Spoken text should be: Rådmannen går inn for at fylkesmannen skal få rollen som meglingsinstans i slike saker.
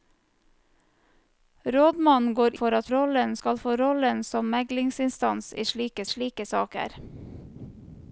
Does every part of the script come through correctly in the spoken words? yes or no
no